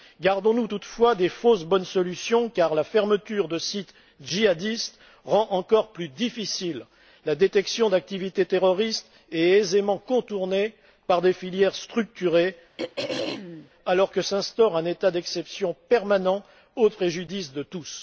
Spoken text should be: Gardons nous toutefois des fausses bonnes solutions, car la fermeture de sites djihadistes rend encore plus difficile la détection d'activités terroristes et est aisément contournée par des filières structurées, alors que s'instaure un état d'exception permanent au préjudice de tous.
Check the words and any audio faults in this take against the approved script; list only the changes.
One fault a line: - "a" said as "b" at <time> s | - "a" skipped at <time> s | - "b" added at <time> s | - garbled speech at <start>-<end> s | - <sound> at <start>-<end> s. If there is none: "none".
- throat clearing at 12.8-13.7 s